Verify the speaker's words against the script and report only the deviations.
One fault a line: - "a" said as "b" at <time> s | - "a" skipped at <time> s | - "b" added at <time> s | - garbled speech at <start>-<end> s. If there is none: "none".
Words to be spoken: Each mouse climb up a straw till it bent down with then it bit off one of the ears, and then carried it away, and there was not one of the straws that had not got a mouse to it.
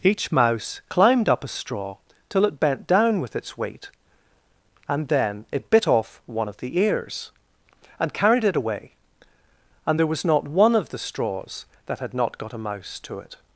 - "climb" said as "climbed" at 0.9 s
- "its weight and" added at 3.4 s
- "then" skipped at 8.1 s